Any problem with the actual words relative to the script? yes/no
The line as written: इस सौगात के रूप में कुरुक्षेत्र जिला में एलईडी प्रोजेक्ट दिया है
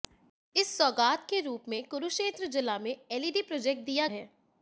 no